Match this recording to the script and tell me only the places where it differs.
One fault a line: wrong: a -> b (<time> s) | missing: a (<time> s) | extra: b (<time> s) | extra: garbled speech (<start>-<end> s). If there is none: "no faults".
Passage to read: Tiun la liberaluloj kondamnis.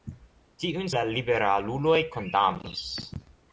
no faults